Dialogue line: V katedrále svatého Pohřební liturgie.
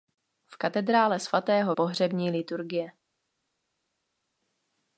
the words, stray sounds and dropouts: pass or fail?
pass